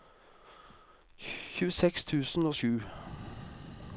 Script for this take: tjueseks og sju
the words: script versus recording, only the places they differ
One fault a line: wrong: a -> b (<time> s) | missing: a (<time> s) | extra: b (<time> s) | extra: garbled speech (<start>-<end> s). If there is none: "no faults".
extra: tusen (2.1 s)